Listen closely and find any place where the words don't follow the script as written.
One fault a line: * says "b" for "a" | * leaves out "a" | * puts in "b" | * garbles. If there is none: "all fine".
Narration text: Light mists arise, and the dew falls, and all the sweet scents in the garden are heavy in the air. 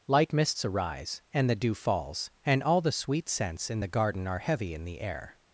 all fine